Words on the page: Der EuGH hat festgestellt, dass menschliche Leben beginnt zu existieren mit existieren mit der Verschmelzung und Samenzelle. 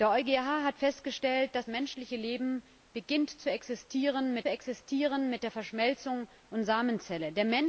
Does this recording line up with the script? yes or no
yes